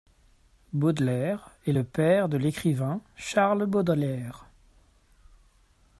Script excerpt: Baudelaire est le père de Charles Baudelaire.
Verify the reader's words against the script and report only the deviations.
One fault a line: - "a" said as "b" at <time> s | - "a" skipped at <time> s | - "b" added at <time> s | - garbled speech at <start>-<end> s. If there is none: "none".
- "l'écrivain" added at 2.4 s